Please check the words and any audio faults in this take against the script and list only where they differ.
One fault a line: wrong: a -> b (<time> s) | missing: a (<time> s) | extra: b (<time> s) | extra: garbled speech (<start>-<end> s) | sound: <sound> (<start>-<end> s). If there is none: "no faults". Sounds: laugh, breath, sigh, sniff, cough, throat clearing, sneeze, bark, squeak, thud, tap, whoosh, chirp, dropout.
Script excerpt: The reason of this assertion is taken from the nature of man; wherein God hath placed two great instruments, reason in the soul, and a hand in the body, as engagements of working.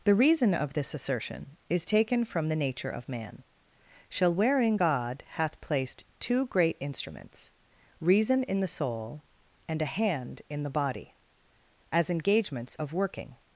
extra: shall (4.1 s)